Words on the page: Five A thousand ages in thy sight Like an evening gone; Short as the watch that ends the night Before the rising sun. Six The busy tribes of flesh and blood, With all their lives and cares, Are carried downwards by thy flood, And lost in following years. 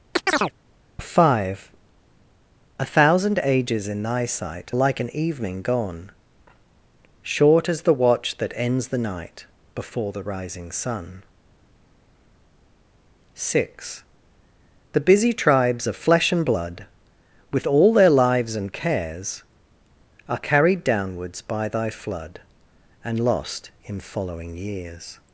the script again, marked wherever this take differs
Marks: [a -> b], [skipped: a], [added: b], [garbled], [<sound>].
[chirp] Five A thousand ages in thy sight Like an evening gone; Short as the watch that ends the night Before the rising sun. Six The busy tribes of flesh and blood, With all their lives and cares, Are carried downwards by thy flood, And lost in following years.